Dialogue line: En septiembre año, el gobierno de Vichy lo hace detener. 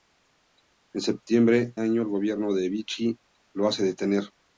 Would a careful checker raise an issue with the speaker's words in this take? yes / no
no